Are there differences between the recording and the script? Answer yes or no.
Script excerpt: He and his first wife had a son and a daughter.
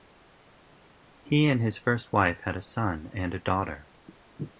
no